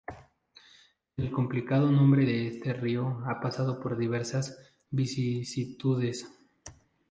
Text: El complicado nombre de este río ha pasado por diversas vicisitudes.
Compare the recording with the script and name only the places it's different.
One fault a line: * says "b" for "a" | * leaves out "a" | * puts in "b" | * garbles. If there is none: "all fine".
all fine